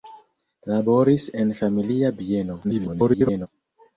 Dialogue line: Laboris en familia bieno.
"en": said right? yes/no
yes